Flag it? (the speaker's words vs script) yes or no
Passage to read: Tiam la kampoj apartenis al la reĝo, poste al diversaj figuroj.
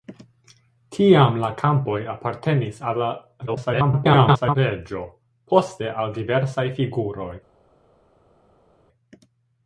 yes